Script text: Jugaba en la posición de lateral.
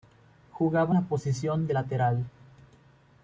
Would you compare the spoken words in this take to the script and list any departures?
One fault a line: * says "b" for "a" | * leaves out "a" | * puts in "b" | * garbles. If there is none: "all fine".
* leaves out "en"